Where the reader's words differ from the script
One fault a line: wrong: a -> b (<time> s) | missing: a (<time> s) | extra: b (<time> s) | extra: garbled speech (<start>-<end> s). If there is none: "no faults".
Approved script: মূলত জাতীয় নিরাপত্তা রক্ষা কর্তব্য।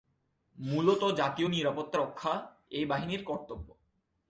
extra: এই বাহিনীর (2.7 s)